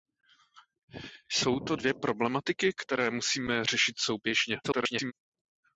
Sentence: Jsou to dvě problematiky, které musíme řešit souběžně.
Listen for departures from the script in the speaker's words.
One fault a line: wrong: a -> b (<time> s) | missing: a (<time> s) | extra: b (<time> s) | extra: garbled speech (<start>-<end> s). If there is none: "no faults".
extra: garbled speech (4.6-5.1 s)